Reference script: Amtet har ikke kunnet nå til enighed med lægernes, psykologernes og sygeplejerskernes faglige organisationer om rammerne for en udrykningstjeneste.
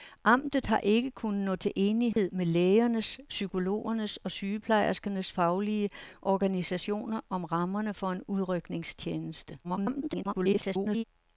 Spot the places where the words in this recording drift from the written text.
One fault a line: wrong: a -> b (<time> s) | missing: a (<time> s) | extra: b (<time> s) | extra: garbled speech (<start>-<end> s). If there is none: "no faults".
extra: garbled speech (9.6-11.0 s)